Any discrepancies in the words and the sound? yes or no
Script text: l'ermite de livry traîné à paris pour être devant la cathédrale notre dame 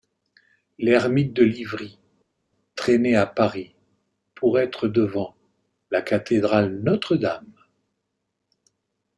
no